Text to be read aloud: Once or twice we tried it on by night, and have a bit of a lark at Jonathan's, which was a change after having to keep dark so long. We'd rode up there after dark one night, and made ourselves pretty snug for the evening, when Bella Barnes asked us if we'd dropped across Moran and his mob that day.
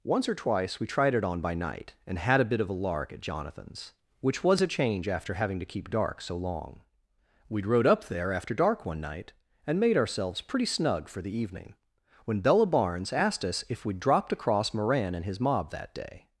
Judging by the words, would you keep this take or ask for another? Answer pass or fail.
fail